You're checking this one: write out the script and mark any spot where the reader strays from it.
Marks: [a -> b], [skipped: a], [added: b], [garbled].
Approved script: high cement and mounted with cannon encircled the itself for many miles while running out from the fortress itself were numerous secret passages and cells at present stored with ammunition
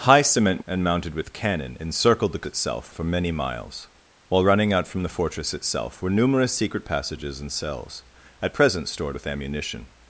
high cement and mounted with cannon encircled the itself for many miles while running out from the fortress itself were numerous secret passages and cells at present stored with ammunition